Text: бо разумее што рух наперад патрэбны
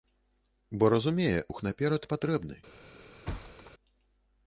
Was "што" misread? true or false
true